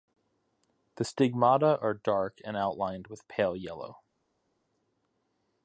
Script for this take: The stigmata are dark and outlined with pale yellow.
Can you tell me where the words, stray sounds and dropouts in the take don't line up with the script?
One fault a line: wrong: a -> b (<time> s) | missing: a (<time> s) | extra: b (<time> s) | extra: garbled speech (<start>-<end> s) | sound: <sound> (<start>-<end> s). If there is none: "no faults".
no faults